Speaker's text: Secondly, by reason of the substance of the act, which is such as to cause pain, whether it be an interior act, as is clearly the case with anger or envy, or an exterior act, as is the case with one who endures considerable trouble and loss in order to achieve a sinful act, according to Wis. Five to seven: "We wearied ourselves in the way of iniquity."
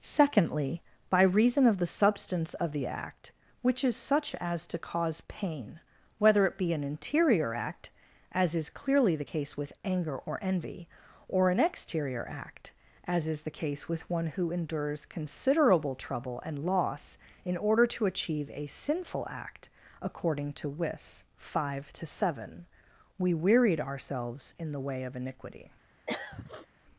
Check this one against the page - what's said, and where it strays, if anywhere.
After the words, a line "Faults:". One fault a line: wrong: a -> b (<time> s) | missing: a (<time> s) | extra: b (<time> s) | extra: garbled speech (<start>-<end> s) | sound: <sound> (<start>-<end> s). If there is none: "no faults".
Secondly, by reason of the substance of the act, which is such as to cause pain, whether it be an interior act, as is clearly the case with anger or envy, or an exterior act, as is the case with one who endures considerable trouble and loss in order to achieve a sinful act, according to Wis. Five to seven: "We wearied ourselves in the way of iniquity."
Faults:
sound: throat clearing (26.1-26.7 s)